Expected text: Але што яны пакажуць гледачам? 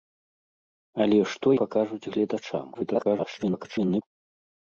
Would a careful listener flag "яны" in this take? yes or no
yes